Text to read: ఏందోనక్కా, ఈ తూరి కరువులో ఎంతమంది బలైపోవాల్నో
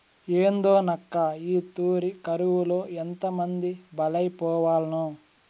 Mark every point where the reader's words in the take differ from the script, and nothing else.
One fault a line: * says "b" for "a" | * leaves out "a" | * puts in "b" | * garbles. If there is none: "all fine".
all fine